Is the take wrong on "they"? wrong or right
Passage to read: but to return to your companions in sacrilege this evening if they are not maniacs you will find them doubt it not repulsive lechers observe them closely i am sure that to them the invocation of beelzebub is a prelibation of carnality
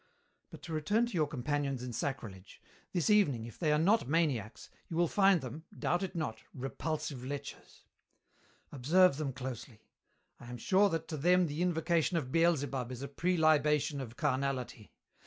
right